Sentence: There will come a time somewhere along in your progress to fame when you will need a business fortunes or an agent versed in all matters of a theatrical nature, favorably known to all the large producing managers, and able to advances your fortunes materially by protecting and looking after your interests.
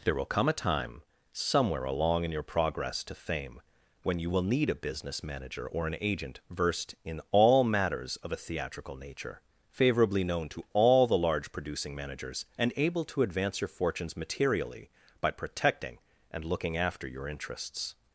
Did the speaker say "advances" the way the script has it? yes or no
no